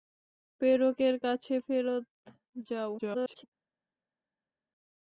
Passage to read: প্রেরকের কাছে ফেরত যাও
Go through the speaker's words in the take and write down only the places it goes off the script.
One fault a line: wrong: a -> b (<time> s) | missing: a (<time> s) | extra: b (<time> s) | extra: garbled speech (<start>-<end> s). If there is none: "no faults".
extra: garbled speech (3.0-3.4 s)